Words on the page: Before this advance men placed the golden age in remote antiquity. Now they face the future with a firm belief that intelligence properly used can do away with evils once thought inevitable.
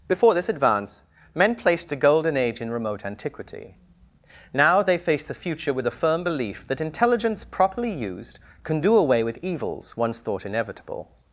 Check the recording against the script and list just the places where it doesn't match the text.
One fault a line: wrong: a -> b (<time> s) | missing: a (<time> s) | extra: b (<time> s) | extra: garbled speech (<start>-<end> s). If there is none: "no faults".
wrong: the -> a (1.9 s)